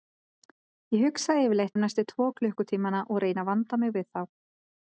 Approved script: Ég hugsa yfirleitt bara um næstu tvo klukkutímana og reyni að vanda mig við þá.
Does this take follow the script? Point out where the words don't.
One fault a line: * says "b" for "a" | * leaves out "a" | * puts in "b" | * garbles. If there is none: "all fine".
* leaves out "bara"